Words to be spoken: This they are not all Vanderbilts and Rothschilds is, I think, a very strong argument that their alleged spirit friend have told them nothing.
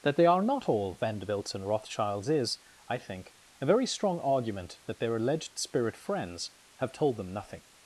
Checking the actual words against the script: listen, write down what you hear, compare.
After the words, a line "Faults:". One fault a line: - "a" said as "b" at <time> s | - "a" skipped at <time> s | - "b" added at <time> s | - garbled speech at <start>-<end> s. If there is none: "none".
That they are not all Vanderbilts and Rothschilds is, I think, a very strong argument that their alleged spirit friends have told them nothing.
Faults:
- "This" said as "That" at 0.0 s
- "friend" said as "friends" at 6.0 s